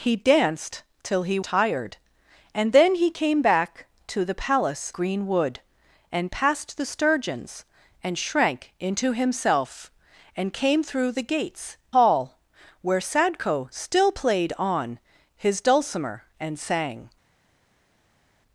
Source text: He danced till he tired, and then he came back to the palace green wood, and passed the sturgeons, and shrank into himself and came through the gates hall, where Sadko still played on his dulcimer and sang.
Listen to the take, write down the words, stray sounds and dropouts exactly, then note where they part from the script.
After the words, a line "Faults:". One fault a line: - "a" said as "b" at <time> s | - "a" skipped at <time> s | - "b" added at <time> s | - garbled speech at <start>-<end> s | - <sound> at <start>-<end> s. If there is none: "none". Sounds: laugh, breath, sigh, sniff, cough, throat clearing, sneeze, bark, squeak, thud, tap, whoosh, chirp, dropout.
He danced till he tired, and then he came back to the palace green wood, and passed the sturgeons, and shrank into himself and came through the gates hall, where Sadko still played on his dulcimer and sang.
Faults:
none